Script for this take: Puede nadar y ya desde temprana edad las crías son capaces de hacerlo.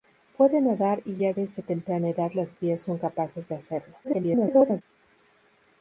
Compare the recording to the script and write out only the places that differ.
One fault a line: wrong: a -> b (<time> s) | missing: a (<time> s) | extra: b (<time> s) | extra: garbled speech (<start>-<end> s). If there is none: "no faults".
extra: garbled speech (4.0-4.8 s)